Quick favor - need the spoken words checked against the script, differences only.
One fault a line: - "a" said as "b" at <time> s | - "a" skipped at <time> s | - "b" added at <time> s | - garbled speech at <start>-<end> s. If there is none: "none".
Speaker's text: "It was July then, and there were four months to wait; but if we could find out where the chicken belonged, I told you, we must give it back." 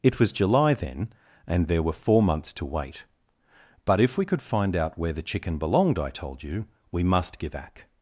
- "it" skipped at 7.5 s